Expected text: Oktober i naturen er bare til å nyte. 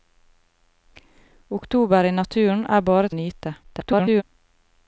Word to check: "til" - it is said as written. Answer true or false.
false